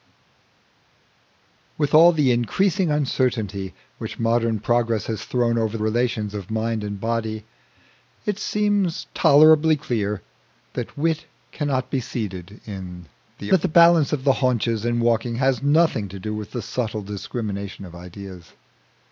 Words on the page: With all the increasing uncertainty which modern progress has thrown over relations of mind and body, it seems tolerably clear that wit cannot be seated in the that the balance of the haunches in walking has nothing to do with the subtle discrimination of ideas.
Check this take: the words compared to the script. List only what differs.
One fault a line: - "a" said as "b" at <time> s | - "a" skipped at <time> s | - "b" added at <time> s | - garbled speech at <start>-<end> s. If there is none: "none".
none